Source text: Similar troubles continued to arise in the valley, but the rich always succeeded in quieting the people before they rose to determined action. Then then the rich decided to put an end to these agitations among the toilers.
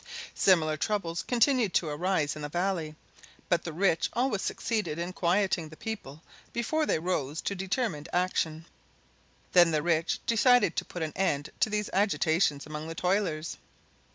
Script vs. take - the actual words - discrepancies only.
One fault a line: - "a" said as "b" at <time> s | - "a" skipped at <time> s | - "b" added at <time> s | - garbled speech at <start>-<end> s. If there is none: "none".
- "then" skipped at 9.7 s